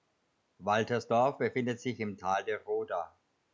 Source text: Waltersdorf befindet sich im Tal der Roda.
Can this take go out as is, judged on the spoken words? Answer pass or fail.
pass